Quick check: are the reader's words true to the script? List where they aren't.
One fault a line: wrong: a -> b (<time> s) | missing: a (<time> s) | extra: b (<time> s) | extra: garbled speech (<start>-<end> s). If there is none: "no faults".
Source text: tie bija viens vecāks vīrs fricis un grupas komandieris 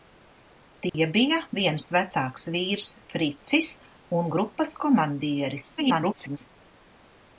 extra: garbled speech (5.8-6.4 s)